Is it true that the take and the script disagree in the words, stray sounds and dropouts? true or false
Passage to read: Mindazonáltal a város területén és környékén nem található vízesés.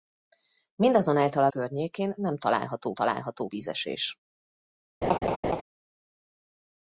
true